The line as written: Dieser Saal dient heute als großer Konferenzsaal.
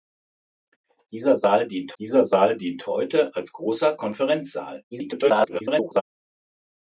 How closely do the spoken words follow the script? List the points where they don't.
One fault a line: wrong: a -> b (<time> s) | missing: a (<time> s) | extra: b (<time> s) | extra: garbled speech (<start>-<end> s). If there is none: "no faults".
extra: dieser Saal dient (2.0 s)
extra: garbled speech (4.9-6.0 s)